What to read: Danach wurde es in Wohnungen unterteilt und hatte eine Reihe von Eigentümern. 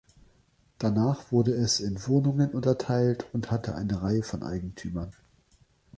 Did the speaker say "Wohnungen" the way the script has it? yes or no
yes